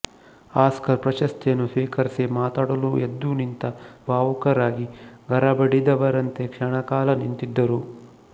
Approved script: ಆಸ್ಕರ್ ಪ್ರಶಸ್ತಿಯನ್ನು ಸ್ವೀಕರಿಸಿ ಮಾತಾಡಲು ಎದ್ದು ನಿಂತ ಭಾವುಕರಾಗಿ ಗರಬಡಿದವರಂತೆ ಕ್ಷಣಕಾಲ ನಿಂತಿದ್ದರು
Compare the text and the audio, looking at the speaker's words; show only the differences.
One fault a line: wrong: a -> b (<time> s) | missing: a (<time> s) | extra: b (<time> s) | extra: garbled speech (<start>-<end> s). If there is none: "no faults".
no faults